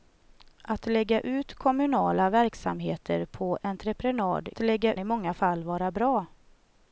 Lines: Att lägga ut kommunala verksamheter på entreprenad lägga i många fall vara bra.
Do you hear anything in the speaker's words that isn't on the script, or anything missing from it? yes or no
no